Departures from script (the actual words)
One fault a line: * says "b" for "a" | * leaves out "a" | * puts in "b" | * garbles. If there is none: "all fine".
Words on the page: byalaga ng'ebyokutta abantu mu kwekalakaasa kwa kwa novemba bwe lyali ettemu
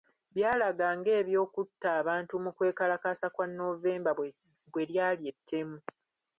* leaves out "kwa"